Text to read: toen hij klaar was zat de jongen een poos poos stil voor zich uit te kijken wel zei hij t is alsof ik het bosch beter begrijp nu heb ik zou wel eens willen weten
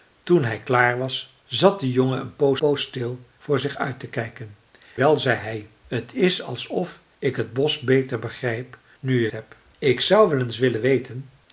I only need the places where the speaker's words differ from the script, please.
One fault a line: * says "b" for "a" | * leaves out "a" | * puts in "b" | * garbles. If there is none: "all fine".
all fine